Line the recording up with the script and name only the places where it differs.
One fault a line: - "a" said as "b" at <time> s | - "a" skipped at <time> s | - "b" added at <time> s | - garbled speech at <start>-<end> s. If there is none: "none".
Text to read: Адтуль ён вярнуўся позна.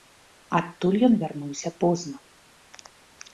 none